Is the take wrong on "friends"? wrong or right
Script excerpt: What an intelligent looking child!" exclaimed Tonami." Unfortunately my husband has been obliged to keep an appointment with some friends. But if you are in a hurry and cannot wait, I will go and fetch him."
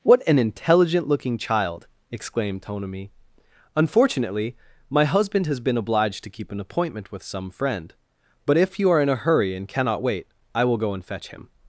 wrong